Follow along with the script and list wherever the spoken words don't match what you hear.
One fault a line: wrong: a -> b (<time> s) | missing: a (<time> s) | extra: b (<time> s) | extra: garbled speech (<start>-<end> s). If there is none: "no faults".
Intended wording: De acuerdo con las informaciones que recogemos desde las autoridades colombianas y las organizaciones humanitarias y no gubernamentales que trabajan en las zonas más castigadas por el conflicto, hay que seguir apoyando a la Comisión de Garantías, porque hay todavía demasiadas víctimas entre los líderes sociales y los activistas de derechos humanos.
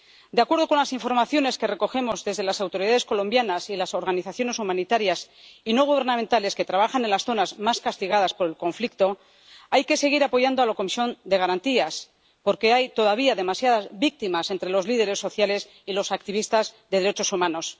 no faults